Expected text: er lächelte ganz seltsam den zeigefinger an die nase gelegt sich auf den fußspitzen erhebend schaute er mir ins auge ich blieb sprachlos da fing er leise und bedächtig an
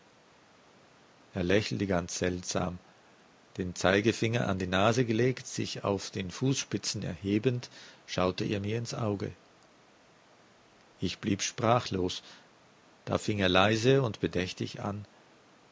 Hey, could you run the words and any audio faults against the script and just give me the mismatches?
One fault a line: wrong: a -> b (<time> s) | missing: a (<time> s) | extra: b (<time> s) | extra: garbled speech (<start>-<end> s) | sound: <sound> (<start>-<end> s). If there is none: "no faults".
no faults